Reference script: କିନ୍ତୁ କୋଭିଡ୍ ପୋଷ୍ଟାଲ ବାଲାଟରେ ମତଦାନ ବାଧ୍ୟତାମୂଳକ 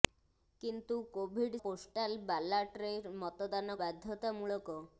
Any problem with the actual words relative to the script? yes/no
no